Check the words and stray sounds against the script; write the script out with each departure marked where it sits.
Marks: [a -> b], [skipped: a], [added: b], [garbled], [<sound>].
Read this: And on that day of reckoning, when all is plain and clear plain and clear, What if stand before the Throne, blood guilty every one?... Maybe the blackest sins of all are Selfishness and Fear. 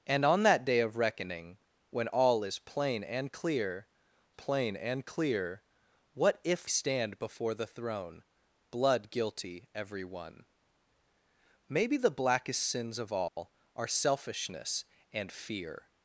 And on that day of reckoning, when all is plain and clear plain and clear, What if stand before the Throne, blood guilty every one?... Maybe the blackest sins of all [dropout] are Selfishness and Fear.